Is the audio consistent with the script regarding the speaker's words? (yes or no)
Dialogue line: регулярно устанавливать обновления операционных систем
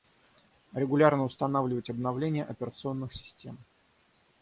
yes